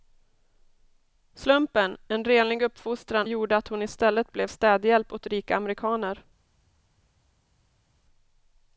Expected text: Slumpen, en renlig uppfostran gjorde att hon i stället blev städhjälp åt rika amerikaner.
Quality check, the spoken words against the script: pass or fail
pass